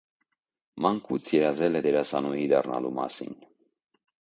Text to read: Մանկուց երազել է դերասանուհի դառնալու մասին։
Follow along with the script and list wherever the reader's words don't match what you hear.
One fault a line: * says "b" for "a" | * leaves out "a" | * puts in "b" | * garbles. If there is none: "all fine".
all fine